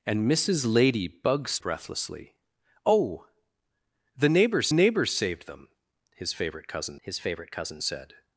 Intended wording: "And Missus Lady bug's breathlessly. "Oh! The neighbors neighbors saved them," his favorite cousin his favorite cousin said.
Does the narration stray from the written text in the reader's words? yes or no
no